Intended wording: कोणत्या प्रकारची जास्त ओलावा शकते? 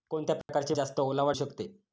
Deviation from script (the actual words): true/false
false